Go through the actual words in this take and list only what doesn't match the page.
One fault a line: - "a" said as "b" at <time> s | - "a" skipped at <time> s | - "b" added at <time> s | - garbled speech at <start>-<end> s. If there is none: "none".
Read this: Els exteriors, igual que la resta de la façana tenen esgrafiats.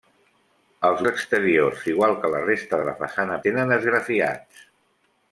none